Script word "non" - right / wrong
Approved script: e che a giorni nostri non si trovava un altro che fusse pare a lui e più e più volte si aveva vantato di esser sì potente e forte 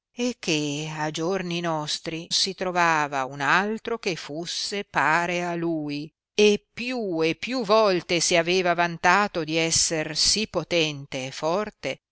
wrong